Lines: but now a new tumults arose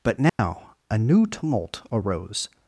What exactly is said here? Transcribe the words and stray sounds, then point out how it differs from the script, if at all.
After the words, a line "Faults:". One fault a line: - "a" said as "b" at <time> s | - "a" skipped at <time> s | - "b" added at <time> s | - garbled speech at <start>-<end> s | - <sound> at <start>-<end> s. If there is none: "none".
but now a new tumult arose
Faults:
- dropout at 0.3-0.4 s
- "tumults" said as "tumult" at 1.2 s